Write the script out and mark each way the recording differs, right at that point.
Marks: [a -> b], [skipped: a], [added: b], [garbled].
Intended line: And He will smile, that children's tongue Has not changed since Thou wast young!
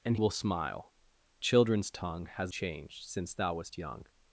And [skipped: He] will smile, [skipped: that] children's tongue Has [skipped: not] changed since Thou wast young!